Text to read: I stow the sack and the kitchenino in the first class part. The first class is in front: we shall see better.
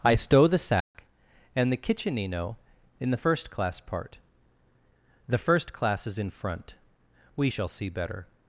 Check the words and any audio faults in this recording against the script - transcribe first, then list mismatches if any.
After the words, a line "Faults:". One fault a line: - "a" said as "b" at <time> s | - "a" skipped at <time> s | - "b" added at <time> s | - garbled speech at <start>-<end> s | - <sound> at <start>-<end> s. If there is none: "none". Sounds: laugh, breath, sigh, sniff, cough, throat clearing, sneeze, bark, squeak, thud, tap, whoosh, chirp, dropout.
I stow the sack and the kitchenino in the first class part. The first class is in front: we shall see better.
Faults:
- dropout at 0.8-0.9 s